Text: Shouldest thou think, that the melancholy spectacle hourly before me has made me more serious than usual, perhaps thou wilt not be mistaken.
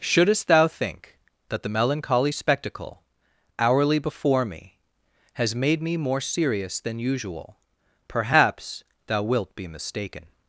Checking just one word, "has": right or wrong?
right